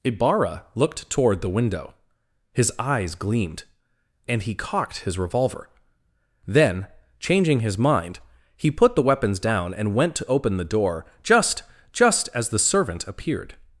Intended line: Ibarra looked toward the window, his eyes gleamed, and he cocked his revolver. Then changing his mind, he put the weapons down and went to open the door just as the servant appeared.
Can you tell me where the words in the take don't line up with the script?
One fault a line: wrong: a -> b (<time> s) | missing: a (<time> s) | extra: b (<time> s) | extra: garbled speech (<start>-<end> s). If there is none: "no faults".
extra: just (11.9 s)